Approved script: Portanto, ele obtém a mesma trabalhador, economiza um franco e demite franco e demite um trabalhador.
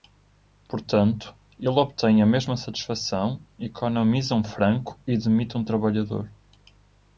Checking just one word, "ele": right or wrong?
right